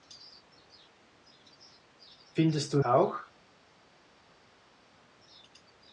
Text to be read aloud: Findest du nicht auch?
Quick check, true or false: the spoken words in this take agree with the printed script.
false